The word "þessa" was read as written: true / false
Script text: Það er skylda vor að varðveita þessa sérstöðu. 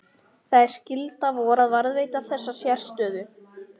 true